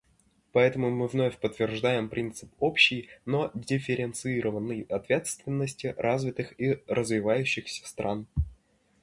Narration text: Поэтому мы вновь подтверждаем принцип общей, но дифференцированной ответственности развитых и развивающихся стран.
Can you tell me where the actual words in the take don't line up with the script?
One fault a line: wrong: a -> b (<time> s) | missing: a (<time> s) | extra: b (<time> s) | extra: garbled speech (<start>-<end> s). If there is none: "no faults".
no faults